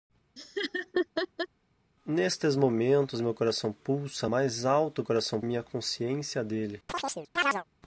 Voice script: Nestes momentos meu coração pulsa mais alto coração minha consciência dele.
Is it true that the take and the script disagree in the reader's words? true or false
false